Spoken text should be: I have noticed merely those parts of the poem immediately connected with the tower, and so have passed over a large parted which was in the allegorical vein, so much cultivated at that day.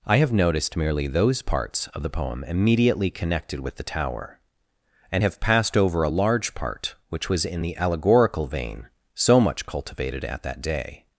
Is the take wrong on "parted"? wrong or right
wrong